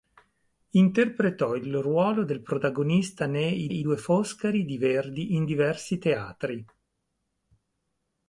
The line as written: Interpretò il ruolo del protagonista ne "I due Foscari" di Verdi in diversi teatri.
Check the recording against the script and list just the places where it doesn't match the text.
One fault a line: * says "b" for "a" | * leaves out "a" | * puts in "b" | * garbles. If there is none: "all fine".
* puts in "I"